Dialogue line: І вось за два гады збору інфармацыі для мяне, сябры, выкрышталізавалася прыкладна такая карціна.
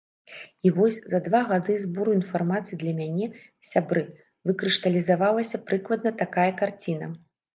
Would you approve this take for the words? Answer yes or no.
yes